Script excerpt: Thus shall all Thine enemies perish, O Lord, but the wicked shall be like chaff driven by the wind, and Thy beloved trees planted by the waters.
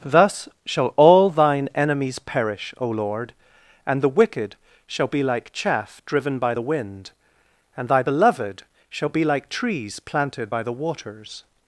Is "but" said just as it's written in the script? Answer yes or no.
no